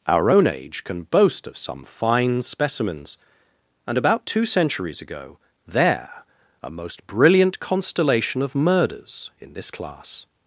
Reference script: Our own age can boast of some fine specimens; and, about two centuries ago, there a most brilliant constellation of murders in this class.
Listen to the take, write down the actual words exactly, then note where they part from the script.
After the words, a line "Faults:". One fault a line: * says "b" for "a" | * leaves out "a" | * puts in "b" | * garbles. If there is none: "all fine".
Our own age can boast of some fine specimens; and, about two centuries ago, there a most brilliant constellation of murders in this class.
Faults:
all fine